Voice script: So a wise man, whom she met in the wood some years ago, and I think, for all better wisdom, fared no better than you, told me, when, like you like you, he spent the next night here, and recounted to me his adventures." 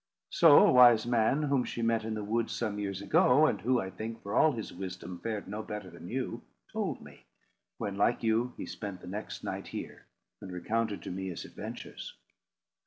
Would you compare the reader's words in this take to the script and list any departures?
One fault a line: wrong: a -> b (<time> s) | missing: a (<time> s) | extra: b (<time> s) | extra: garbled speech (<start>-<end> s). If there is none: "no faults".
extra: who (3.6 s)
wrong: better -> his (4.5 s)
missing: like you (8.5 s)